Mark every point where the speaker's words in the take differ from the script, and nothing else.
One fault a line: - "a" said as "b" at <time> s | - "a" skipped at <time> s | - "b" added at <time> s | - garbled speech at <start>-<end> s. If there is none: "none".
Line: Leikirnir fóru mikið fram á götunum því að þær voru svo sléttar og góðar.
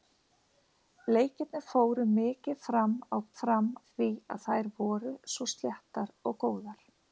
- "götunum" said as "fram" at 3.4 s